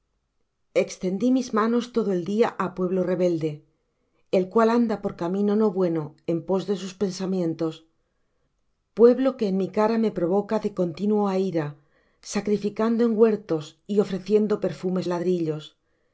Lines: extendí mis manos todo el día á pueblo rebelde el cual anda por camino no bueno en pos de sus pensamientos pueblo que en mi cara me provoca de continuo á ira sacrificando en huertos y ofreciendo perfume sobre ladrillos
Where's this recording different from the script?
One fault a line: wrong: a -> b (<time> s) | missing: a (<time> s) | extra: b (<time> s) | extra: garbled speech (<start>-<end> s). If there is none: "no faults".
missing: sobre (15.0 s)